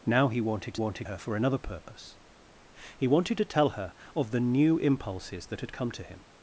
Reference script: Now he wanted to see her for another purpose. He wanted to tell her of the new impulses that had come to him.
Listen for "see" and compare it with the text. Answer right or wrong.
wrong